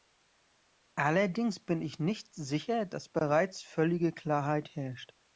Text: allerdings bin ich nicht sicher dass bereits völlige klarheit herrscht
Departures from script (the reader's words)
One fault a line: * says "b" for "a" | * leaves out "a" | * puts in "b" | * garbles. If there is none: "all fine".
all fine